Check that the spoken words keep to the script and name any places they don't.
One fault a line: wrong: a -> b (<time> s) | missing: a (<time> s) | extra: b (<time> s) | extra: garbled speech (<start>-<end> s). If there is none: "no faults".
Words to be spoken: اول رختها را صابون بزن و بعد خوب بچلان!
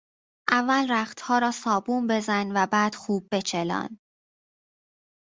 no faults